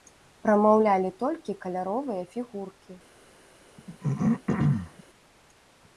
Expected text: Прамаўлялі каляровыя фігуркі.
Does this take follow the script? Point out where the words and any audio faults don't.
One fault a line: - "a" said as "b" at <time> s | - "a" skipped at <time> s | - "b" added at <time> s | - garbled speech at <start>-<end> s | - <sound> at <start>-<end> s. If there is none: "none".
- "толькі" added at 1.2 s
- throat clearing at 3.8-5.0 s